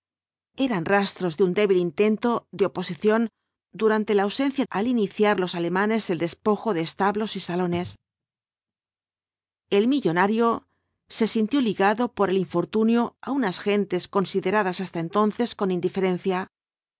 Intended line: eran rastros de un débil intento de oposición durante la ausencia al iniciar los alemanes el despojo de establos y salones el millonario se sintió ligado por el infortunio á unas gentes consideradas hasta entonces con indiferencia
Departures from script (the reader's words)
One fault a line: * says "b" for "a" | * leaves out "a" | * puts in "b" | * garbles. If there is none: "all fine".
all fine